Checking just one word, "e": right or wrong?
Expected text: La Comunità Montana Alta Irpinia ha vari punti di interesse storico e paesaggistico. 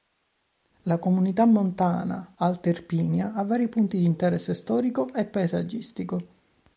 right